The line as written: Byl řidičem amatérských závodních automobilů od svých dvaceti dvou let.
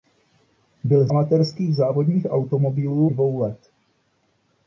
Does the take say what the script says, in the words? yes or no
no